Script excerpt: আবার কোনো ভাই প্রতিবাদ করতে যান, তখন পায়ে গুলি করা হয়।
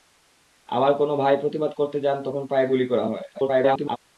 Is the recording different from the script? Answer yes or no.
yes